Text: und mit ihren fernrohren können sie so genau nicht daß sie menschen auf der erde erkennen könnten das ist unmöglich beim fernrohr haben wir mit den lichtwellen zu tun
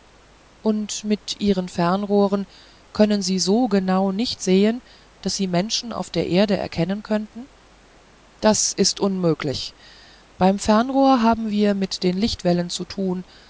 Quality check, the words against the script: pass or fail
fail